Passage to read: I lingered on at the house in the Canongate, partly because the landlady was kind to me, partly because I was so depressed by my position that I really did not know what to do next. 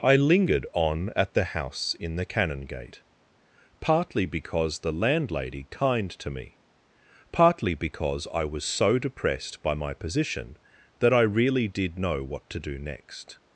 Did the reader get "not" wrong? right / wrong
wrong